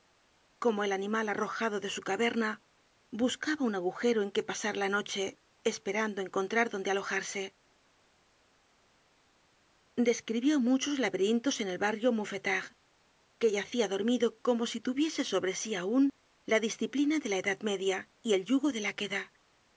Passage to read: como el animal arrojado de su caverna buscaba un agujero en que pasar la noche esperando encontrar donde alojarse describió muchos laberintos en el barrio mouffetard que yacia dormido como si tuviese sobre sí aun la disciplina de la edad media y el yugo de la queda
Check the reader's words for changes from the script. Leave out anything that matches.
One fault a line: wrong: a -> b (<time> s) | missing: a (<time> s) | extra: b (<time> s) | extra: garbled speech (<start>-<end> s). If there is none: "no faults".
no faults